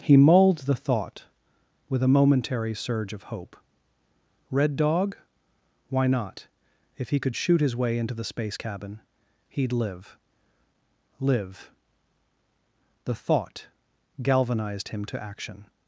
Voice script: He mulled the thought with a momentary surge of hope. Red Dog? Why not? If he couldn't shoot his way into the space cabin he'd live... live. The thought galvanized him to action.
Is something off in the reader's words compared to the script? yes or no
yes